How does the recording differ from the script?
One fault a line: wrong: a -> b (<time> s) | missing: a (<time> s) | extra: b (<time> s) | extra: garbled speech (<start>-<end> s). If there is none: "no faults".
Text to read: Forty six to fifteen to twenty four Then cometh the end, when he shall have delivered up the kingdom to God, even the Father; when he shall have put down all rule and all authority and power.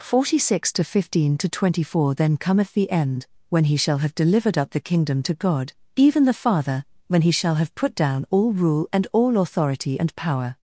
no faults